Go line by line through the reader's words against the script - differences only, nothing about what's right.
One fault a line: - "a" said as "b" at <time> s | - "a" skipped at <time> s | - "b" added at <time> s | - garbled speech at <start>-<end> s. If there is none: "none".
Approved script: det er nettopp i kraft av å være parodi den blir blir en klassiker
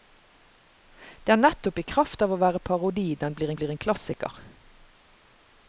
none